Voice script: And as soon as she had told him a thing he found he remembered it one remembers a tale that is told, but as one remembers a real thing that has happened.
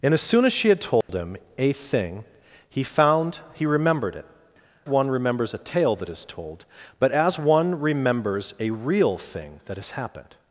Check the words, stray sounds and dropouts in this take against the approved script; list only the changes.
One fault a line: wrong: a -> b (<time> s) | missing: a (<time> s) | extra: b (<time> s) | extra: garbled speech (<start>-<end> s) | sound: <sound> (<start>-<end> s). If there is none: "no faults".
sound: dropout (1.0-1.1 s)